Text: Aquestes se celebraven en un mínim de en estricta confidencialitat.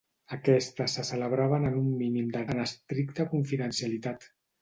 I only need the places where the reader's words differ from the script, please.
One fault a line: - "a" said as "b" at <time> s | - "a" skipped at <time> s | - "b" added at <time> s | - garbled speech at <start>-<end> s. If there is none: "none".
none